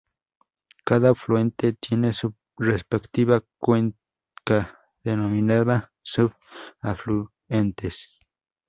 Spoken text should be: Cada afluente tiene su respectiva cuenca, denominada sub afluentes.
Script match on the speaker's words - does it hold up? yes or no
yes